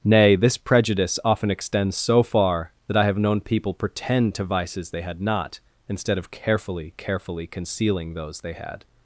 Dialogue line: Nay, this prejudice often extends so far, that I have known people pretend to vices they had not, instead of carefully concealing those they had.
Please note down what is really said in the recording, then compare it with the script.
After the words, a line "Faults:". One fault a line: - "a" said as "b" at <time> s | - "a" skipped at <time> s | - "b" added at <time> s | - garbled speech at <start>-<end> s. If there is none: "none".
Nay, this prejudice often extends so far, that I have known people pretend to vices they had not, instead of carefully carefully concealing those they had.
Faults:
- "carefully" added at 7.0 s